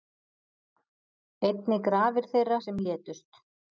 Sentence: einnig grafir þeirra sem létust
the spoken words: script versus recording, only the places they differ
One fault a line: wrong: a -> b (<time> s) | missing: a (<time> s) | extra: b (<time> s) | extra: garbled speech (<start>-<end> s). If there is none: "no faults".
no faults